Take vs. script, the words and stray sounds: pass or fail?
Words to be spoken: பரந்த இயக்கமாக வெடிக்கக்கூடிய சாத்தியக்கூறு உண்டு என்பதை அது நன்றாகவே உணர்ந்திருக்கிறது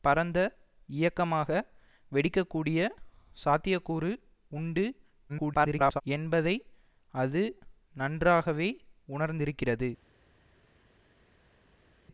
fail